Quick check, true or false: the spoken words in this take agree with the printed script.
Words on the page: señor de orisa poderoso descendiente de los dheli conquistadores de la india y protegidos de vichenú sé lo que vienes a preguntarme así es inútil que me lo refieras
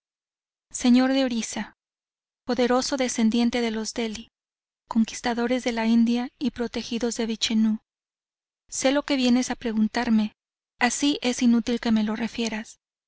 true